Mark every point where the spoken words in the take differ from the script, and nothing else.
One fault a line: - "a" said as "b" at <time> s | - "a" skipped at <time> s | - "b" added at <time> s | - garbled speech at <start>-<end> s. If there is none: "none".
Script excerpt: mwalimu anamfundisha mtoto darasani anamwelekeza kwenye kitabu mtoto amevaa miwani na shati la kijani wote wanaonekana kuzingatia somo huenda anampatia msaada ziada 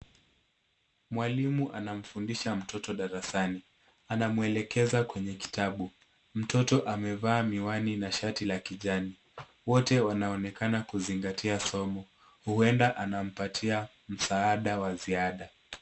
- "wa" added at 14.8 s